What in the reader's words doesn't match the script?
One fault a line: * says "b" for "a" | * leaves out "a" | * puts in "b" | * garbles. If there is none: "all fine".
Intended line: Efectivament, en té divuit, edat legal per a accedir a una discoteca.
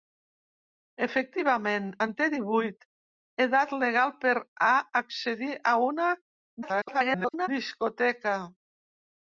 * garbles